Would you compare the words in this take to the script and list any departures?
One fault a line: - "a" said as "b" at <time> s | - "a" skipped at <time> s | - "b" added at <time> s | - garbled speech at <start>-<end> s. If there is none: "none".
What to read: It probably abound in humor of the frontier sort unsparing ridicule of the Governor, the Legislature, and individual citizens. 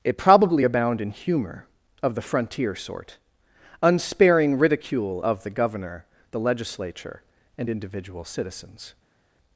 none